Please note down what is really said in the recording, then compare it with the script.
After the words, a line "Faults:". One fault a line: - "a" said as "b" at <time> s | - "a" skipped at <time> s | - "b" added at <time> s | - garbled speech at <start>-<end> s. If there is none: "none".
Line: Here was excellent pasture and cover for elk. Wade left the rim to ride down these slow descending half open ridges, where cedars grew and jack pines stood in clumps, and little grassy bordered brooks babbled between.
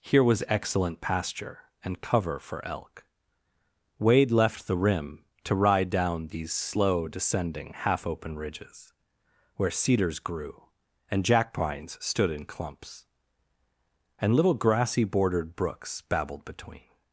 Here was excellent pasture and cover for elk. Wade left the rim to ride down these slow descending half open ridges, where cedars grew and jack pines stood in clumps, and little grassy bordered brooks babbled between.
Faults:
none